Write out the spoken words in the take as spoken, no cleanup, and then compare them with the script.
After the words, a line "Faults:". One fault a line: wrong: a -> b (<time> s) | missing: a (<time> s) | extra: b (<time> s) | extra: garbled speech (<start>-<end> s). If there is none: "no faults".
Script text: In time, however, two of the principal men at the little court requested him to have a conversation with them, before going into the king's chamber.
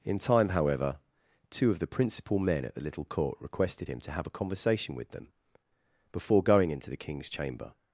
In time, however, two of the principal men at the little court requested him to have a conversation with them, before going into the king's chamber.
Faults:
no faults